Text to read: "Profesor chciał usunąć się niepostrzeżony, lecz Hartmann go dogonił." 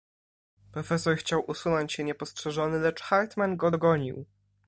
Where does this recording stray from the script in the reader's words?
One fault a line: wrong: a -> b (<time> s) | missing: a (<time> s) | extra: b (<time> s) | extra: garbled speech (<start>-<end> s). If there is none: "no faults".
no faults